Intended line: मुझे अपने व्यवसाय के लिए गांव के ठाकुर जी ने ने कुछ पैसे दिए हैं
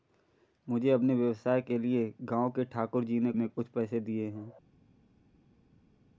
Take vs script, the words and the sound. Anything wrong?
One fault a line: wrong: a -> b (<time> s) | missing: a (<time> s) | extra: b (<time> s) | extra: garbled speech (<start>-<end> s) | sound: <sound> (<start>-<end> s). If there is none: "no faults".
no faults